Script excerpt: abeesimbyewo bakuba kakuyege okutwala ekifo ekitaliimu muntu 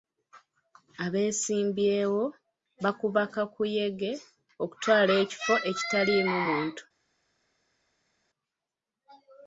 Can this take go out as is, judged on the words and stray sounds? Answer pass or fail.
pass